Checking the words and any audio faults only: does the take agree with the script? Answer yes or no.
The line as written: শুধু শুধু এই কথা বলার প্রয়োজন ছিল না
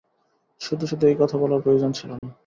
no